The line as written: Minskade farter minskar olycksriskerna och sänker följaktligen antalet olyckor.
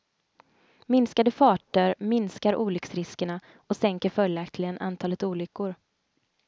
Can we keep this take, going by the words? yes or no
yes